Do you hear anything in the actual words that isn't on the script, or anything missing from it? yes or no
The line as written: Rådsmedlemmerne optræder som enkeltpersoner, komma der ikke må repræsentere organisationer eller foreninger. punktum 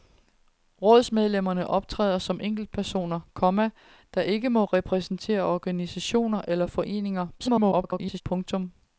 yes